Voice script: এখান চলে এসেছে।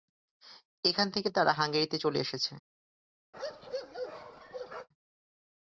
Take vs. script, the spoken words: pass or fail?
fail